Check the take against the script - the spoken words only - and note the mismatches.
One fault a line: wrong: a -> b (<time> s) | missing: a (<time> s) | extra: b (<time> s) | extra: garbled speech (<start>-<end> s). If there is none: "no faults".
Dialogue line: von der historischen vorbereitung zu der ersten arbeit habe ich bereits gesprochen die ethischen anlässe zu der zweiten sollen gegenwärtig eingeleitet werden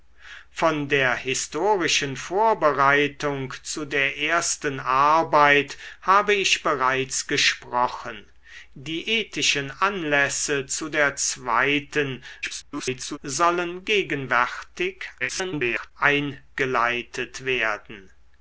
extra: garbled speech (12.4-13.2 s)
extra: garbled speech (15.2-15.9 s)